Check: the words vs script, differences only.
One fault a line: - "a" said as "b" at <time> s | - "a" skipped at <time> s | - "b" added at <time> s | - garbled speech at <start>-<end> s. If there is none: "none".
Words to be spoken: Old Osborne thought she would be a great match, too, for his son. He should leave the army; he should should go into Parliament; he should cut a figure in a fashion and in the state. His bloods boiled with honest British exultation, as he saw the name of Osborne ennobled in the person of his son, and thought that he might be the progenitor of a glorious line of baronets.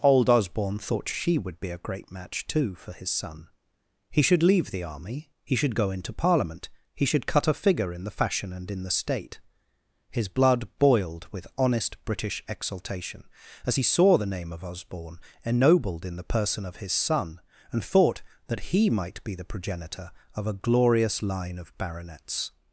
- "should" skipped at 5.8 s
- "a" said as "the" at 8.0 s
- "bloods" said as "blood" at 10.3 s